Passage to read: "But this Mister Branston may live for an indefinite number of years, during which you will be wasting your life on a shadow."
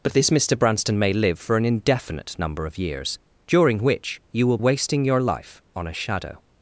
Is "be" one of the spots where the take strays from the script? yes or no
yes